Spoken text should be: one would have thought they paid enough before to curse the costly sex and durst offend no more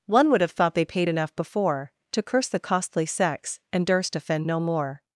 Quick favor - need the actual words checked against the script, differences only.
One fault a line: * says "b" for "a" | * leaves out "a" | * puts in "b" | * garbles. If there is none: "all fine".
all fine